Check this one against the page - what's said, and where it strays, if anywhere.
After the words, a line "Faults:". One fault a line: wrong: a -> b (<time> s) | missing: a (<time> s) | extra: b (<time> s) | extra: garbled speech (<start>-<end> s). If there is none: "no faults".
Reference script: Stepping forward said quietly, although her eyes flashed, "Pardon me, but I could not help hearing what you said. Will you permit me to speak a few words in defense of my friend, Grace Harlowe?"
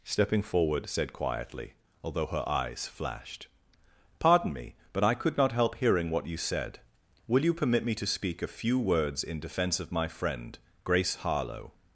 Stepping forward said quietly, although her eyes flashed, "Pardon me, but I could not help hearing what you said. Will you permit me to speak a few words in defense of my friend, Grace Harlowe?"
Faults:
no faults